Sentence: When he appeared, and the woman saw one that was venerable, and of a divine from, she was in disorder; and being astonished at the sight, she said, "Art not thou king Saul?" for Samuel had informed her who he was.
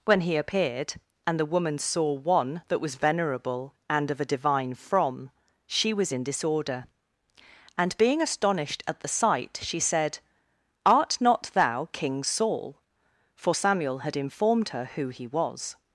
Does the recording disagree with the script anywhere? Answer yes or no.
no